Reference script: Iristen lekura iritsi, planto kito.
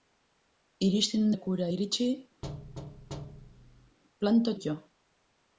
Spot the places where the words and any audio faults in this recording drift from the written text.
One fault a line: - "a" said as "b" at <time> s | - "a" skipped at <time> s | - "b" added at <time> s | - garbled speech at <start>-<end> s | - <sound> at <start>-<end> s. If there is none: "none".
- thud at 2.4-4.0 s